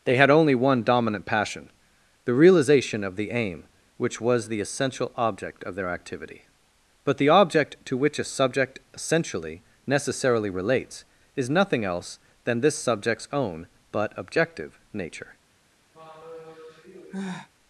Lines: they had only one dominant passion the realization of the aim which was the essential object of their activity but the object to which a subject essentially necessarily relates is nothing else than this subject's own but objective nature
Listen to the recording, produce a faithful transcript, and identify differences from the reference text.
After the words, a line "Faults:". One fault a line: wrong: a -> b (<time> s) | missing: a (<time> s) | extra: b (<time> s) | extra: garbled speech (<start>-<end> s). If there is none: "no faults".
they had only one dominant passion the realization of the aim which was the essential object of their activity but the object to which a subject essentially necessarily relates is nothing else than this subject's own but objective nature
Faults:
no faults